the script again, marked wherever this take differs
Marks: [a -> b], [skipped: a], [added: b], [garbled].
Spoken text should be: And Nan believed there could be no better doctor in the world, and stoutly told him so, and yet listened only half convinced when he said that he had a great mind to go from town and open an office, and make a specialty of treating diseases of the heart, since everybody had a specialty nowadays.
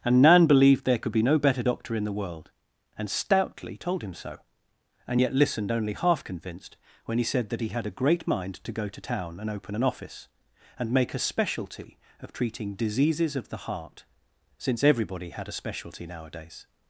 And Nan believed there could be no better doctor in the world, and stoutly told him so, and yet listened only half convinced when he said that he had a great mind to go [from -> to] town and open an office, and make a specialty of treating diseases of the heart, since everybody had a specialty nowadays.